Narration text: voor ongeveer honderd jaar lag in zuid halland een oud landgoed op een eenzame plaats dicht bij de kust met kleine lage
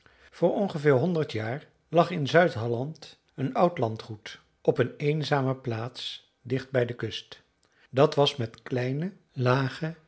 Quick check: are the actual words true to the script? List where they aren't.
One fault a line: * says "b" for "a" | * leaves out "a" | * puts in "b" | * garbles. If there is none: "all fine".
* puts in "dat was"